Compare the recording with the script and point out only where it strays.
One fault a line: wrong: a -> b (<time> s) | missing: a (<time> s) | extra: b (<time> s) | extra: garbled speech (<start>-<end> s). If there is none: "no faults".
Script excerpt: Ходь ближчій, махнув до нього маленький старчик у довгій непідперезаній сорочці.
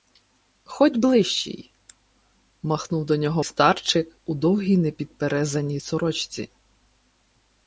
missing: маленький (3.4 s)